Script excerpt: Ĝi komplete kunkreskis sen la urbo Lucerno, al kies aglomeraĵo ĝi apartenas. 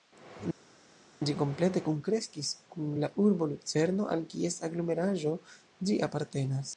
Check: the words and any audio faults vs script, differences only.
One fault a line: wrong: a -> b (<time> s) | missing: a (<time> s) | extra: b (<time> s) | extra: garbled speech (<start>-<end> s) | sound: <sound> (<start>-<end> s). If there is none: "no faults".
wrong: sen -> kun (2.8 s)